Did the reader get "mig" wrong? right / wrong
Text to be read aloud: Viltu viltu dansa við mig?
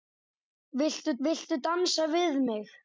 right